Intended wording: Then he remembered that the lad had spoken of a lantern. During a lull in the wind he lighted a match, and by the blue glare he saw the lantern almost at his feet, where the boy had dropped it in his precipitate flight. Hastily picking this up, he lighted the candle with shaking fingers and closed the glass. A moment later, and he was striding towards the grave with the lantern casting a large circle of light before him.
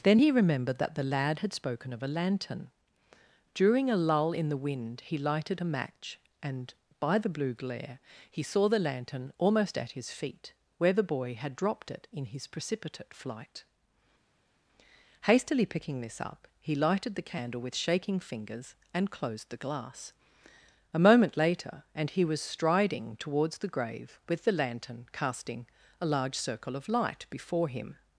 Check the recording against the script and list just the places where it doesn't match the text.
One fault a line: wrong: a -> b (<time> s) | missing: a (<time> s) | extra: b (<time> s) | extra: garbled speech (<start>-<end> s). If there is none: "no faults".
no faults